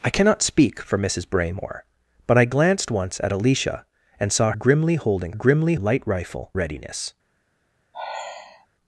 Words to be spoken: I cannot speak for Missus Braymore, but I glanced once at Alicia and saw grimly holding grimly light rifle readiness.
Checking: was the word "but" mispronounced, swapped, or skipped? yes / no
no